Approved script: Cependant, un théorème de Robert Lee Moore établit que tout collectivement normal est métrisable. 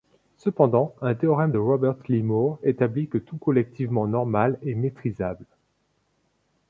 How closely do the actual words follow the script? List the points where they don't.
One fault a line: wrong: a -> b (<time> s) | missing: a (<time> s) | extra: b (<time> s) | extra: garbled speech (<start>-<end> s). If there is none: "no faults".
no faults